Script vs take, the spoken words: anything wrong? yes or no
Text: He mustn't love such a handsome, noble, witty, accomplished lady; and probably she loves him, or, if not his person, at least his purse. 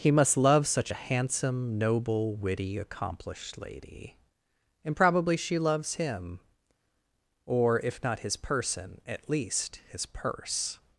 yes